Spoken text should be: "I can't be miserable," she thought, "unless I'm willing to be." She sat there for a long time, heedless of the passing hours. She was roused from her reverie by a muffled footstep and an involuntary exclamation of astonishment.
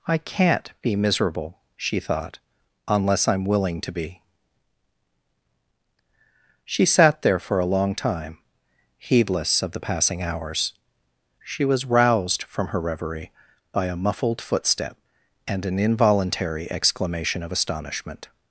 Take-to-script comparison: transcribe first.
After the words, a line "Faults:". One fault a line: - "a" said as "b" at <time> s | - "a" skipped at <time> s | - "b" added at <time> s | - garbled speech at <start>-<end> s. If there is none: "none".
"I can't be miserable," she thought, "unless I'm willing to be." She sat there for a long time, heedless of the passing hours. She was roused from her reverie by a muffled footstep and an involuntary exclamation of astonishment.
Faults:
none